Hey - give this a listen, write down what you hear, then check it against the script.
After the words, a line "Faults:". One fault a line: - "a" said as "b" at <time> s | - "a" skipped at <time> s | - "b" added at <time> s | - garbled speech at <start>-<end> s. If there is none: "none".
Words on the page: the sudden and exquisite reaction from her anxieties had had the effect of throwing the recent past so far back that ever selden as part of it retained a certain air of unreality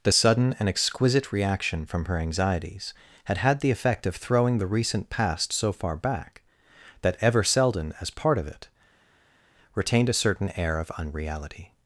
the sudden and exquisite reaction from her anxieties had had the effect of throwing the recent past so far back that ever selden as part of it retained a certain air of unreality
Faults:
none